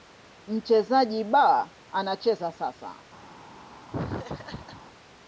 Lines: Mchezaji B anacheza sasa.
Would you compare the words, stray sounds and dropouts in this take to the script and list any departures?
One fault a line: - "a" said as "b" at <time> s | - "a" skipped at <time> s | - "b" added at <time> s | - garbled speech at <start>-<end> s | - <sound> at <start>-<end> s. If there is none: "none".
- laugh at 3.9-4.8 s